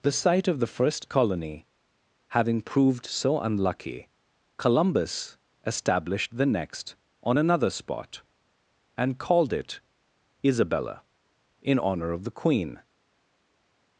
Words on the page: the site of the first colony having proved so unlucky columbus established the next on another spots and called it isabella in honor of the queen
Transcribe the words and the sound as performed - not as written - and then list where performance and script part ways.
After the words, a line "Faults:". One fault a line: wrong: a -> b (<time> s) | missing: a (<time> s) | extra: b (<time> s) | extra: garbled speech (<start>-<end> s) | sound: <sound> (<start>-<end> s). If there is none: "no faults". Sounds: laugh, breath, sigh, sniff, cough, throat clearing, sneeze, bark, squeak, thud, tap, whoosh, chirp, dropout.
the site of the first colony having proved so unlucky columbus established the next on another spot and called it isabella in honor of the queen
Faults:
wrong: spots -> spot (7.7 s)